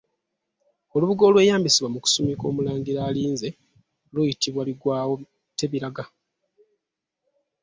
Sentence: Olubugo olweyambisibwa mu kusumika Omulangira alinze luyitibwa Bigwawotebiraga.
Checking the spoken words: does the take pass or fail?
pass